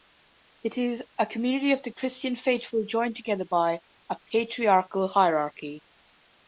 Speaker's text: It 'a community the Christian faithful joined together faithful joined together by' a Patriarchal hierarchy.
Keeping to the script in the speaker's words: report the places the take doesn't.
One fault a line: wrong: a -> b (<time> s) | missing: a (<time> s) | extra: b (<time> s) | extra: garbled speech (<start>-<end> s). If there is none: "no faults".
extra: is (0.8 s)
extra: of (1.7 s)
missing: faithful joined together (3.5 s)